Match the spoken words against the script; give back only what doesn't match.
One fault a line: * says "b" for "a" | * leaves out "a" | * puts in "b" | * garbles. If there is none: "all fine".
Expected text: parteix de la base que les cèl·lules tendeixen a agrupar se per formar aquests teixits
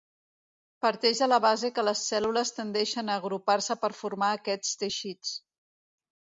all fine